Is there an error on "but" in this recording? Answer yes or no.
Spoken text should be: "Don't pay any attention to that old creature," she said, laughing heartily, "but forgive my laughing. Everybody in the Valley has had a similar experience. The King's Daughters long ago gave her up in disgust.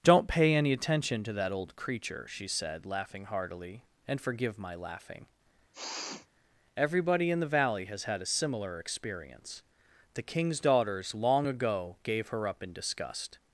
yes